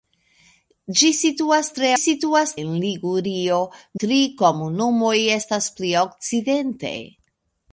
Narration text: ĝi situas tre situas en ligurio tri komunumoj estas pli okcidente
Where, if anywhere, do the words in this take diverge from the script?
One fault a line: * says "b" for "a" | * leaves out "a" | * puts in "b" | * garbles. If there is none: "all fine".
all fine